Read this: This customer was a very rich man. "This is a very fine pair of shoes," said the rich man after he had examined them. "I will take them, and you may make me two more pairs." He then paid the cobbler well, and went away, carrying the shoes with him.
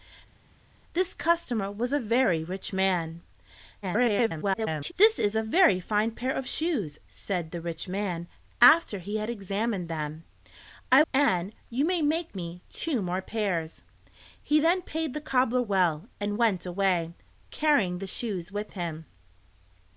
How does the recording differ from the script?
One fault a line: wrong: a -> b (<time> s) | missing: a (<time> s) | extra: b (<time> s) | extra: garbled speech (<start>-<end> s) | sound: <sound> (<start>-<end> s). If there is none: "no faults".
extra: garbled speech (3.8-4.9 s)
missing: will take them (11.0 s)